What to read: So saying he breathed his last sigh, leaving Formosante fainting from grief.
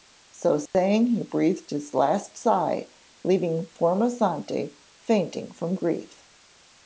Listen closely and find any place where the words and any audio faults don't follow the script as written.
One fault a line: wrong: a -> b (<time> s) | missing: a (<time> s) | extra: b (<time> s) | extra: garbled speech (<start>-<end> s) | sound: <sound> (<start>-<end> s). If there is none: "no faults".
sound: dropout (0.7-0.7 s)